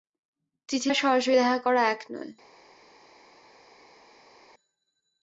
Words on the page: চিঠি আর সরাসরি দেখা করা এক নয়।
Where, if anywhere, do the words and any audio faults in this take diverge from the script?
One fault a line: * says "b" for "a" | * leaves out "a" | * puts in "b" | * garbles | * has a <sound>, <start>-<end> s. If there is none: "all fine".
all fine